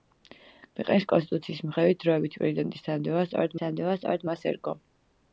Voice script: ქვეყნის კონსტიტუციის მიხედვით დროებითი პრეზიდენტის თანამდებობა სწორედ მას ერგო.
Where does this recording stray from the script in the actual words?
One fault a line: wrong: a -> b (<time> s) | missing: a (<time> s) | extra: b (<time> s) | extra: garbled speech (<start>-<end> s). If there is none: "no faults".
extra: თანამდებობა სწორედ (3.6 s)